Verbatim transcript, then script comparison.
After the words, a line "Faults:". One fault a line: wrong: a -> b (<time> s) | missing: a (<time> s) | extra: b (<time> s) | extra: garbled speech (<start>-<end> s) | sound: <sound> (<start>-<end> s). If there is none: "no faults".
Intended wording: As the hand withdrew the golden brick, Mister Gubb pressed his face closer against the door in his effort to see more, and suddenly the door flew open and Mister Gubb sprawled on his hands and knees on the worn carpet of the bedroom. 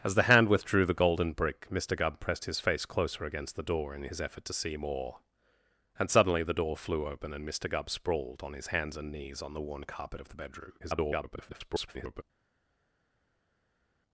As the hand withdrew the golden brick, Mister Gubb pressed his face closer against the door in his effort to see more, and suddenly the door flew open and Mister Gubb sprawled on his hands and knees on the worn carpet of the bedroom. [garbled]
Faults:
extra: garbled speech (10.8-12.2 s)